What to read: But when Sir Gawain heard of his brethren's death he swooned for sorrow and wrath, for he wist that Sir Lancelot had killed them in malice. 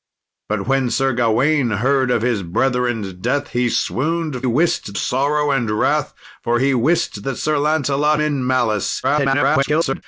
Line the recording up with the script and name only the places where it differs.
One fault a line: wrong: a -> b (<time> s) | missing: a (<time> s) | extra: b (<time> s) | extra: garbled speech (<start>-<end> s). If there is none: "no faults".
wrong: for -> wist (4.5 s)
missing: had killed them (8.2 s)
extra: garbled speech (9.0-10.0 s)